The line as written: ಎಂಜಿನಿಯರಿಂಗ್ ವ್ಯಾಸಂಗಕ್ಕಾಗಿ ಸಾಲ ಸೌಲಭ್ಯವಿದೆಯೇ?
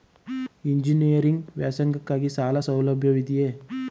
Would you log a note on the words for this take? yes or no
no